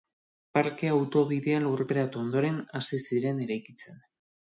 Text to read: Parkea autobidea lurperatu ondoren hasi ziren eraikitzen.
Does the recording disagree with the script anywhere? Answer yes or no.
no